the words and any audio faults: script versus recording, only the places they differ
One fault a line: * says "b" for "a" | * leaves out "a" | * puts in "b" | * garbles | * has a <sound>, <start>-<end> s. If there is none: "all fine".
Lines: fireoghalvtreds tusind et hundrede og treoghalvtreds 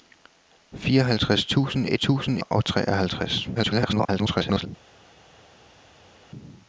* says "tusind" for "hundrede"
* garbles